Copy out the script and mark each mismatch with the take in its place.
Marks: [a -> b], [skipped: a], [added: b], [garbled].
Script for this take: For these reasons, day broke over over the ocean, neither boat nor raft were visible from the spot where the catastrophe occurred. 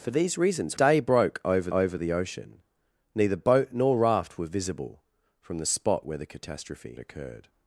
For these reasons, day broke over over the ocean, neither boat nor raft were visible from the spot where the catastrophe occurred.